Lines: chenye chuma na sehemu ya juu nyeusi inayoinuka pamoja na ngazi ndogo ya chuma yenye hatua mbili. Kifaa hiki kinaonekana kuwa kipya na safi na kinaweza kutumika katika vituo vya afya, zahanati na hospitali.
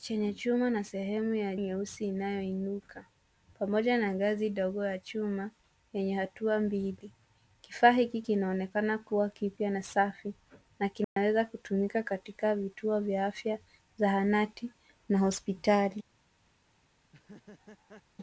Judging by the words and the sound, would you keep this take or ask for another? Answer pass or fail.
fail